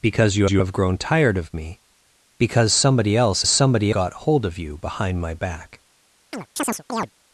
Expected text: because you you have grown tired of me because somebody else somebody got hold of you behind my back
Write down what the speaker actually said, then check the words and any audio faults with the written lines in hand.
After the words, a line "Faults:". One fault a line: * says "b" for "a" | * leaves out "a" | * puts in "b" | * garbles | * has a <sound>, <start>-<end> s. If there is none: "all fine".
because you you have grown tired of me because somebody else somebody got hold of you behind my back
Faults:
* has a chirp, 6.3-7.1 s